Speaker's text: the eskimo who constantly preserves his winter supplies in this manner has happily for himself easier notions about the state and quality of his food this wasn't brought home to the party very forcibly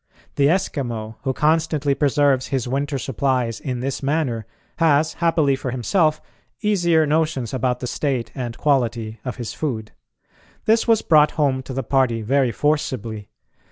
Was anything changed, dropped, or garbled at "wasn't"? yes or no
yes